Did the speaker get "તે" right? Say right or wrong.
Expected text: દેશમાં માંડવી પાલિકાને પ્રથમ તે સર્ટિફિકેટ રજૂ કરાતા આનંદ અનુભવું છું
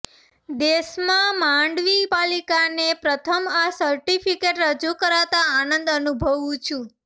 wrong